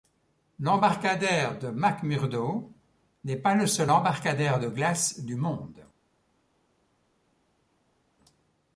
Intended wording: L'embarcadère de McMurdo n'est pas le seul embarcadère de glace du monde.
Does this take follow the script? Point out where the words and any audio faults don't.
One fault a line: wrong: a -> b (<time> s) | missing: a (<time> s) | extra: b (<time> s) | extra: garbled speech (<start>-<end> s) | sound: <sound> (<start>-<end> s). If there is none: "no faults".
no faults